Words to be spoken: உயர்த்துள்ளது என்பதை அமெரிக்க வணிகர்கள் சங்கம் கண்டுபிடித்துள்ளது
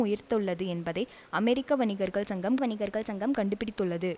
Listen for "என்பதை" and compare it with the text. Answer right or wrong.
right